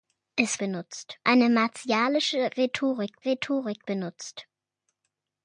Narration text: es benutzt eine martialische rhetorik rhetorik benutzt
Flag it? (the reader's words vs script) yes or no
no